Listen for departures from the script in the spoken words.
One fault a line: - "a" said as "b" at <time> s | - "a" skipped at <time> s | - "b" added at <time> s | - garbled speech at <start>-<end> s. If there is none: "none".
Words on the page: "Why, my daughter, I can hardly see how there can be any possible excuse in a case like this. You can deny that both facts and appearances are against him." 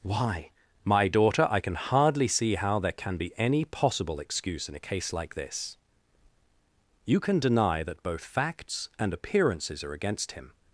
none